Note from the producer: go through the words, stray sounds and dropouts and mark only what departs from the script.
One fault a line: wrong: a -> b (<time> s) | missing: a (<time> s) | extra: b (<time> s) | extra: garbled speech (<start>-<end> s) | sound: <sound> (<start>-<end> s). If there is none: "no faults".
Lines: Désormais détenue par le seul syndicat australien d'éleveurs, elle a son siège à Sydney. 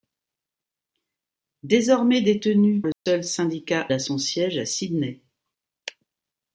missing: par (2.8 s)
sound: dropout (2.9-3.1 s)
missing: australien d'éleveurs elle (3.9 s)